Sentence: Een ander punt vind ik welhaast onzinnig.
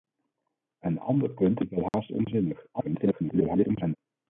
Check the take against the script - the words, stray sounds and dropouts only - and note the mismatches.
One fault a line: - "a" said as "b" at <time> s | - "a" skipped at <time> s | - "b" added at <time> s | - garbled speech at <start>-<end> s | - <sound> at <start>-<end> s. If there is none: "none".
- "vind" skipped at 1.6 s
- dropout at 1.9-1.9 s
- garbled speech at 2.7-4.0 s